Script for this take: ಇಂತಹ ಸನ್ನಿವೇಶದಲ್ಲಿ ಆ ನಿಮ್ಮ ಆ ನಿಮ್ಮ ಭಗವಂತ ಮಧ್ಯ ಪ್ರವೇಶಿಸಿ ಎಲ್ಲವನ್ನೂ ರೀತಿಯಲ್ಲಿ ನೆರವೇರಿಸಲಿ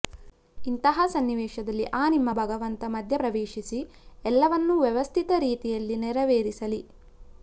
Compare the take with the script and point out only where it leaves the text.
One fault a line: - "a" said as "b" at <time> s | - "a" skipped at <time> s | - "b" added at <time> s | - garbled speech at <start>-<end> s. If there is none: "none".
- "ಆ ನಿಮ್ಮ" skipped at 2.3 s
- "ವ್ಯವಸ್ಥಿತ" added at 4.8 s